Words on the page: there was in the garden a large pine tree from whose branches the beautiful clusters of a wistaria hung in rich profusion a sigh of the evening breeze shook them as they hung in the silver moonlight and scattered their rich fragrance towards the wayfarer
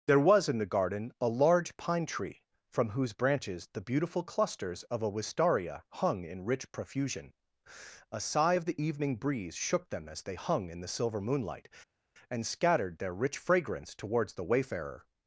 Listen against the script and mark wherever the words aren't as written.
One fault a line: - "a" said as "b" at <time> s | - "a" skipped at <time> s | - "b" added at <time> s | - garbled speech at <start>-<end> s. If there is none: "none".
none